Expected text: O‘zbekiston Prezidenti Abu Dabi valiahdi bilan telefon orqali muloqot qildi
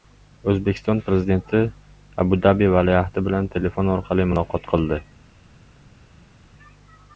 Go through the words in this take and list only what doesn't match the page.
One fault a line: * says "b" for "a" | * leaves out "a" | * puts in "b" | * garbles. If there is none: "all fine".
all fine